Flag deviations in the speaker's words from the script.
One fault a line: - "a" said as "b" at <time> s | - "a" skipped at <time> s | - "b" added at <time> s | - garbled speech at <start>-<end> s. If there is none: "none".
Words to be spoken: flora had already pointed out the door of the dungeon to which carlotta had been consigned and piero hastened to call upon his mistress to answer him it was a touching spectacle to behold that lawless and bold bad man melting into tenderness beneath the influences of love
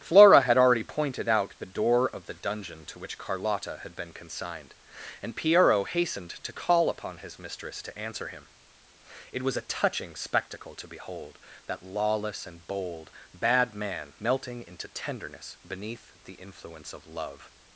- "influences" said as "influence" at 16.3 s